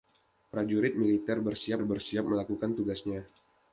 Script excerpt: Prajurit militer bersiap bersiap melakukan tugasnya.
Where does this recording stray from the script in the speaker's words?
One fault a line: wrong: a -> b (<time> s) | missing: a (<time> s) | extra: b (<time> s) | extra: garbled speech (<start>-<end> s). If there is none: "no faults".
no faults